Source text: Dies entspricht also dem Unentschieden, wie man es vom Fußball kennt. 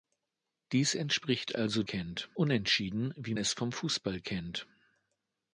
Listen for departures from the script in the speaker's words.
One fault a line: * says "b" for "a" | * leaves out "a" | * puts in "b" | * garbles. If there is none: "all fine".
* says "kennt" for "dem"
* leaves out "man"